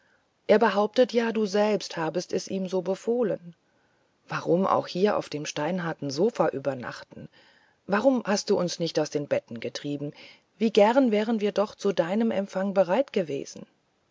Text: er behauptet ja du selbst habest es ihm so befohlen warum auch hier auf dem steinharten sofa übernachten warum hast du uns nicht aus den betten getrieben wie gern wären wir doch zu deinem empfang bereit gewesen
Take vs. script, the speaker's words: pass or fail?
pass